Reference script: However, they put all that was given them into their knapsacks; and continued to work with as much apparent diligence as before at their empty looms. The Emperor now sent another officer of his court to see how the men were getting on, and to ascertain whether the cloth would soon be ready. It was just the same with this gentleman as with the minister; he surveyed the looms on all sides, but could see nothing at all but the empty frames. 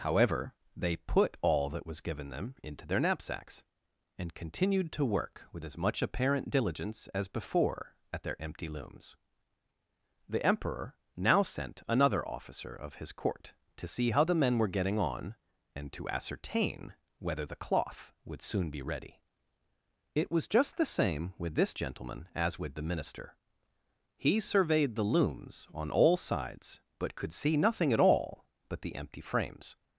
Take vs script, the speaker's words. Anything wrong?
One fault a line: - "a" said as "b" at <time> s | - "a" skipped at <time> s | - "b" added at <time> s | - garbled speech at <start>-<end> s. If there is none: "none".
none